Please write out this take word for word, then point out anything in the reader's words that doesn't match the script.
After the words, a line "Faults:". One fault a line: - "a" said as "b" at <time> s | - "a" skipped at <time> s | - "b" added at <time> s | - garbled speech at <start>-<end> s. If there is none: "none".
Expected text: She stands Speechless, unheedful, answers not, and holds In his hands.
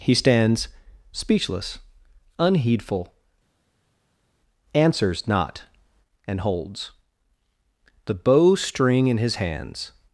He stands Speechless, unheedful, answers not, and holds The bow string in his hands.
Faults:
- "She" said as "He" at 0.0 s
- "The bow string" added at 8.0 s